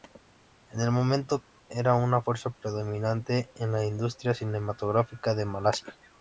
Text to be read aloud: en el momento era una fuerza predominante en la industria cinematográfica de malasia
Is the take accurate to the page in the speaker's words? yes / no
yes